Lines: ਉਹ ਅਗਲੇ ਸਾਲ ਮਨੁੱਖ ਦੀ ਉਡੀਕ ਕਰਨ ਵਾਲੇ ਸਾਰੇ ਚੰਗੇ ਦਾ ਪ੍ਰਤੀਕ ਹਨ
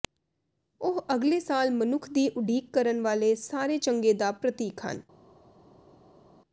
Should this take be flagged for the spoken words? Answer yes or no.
no